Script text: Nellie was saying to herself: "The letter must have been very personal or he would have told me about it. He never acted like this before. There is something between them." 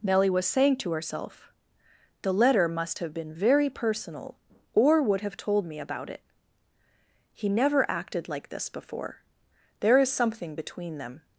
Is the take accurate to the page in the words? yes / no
no